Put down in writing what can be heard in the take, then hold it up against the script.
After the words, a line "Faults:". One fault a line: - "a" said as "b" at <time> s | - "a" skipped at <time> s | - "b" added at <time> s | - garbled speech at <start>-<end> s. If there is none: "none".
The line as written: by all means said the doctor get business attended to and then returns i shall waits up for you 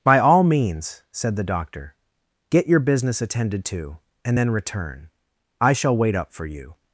by all means said the doctor get your business attended to and then return i shall wait up for you
Faults:
- "your" added at 2.6 s
- "returns" said as "return" at 4.5 s
- "waits" said as "wait" at 6.0 s